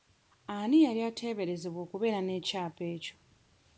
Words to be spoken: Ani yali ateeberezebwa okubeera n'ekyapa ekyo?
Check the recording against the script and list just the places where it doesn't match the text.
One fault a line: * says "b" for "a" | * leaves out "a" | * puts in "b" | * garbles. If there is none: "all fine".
all fine